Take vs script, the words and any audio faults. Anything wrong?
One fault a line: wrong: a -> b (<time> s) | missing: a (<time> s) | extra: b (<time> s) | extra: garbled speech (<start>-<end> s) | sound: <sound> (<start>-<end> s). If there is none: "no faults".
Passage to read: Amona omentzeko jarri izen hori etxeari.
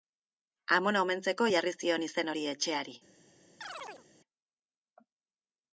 extra: zion (1.8 s)
sound: chirp (3.6-4.1 s)